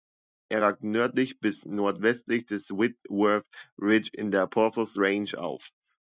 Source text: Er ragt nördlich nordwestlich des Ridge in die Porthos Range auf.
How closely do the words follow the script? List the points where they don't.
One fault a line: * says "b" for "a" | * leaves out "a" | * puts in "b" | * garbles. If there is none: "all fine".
* puts in "bis"
* puts in "Whitworth"
* says "der" for "die"